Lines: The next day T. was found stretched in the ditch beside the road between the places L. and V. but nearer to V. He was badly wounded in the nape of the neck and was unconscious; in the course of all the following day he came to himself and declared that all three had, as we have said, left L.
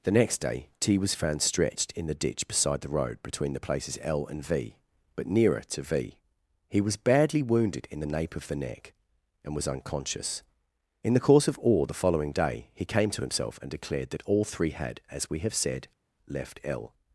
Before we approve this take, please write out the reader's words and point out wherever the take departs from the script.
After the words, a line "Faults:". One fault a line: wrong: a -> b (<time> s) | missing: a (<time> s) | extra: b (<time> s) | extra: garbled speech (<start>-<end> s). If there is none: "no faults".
The next day T. was found stretched in the ditch beside the road between the places L. and V. but nearer to V. He was badly wounded in the nape of the neck and was unconscious; in the course of all the following day he came to himself and declared that all three had, as we have said, left L.
Faults:
no faults